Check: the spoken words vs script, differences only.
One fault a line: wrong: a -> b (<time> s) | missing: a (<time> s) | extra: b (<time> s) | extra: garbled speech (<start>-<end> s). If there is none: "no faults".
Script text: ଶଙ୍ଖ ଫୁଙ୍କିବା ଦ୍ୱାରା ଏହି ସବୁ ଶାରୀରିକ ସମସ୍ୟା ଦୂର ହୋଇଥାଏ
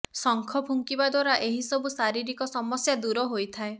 no faults